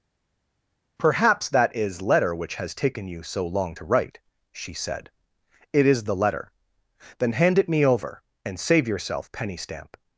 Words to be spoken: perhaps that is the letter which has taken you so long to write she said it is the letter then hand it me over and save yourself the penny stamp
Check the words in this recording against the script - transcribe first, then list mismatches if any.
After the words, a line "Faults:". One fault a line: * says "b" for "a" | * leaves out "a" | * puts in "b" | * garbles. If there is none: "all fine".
perhaps that is letter which has taken you so long to write she said it is the letter then hand it me over and save yourself penny stamp
Faults:
* leaves out "the"
* leaves out "the"